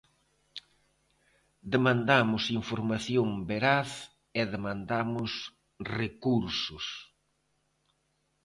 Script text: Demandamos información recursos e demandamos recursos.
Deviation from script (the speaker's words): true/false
true